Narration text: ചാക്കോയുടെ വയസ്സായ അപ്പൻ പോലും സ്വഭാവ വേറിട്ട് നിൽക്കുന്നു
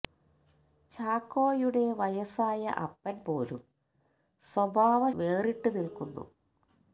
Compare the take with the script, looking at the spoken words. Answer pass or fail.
pass